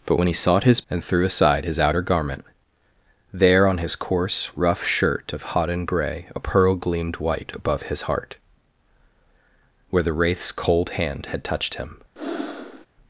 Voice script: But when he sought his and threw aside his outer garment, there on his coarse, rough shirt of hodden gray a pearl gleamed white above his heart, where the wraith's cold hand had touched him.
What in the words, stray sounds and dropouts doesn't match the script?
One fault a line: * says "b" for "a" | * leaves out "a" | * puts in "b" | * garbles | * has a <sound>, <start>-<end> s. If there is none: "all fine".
* has a breath, 12.2-12.9 s